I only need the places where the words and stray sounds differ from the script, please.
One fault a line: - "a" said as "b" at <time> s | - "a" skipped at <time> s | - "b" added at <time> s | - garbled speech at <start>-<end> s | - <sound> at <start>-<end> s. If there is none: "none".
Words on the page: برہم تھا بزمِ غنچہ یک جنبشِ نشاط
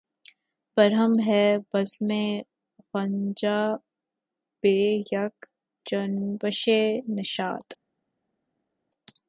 - "تھا" said as "ہے" at 1.3 s
- "بہ" added at 4.6 s